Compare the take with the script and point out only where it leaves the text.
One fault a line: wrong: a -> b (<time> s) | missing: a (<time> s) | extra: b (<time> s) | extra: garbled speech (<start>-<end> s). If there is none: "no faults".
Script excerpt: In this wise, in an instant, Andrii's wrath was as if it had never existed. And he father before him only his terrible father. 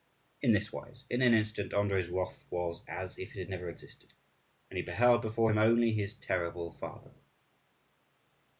wrong: father -> beheld (4.8 s)